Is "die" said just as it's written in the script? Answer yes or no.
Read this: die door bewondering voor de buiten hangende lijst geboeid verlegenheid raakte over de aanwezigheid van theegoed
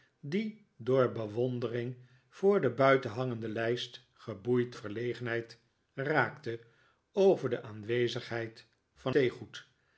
yes